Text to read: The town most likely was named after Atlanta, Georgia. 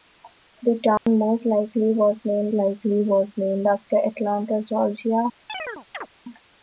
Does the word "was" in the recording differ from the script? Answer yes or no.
no